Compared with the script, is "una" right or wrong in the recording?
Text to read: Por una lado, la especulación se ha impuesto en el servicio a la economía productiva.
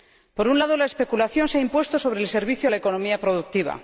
wrong